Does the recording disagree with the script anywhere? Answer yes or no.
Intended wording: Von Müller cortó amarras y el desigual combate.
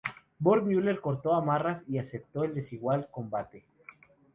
yes